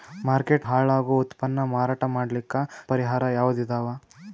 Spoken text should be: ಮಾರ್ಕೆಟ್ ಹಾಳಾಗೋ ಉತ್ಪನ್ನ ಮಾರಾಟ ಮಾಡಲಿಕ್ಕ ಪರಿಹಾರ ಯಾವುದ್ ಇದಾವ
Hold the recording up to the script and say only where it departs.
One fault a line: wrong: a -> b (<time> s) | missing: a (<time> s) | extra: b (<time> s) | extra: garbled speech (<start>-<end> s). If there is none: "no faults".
no faults